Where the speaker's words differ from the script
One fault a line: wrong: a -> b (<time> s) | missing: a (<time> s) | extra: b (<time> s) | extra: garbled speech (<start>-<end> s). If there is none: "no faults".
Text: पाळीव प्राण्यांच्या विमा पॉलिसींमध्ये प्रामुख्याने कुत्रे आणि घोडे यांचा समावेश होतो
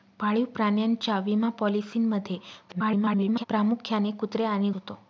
extra: garbled speech (2.7-3.4 s)
missing: घोडे यांचा समावेश (4.7 s)